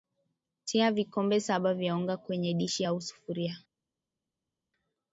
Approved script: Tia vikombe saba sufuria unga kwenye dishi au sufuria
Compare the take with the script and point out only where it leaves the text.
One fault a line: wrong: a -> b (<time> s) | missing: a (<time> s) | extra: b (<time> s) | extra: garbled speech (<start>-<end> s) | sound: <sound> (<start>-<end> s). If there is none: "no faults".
wrong: sufuria -> vya (1.7 s)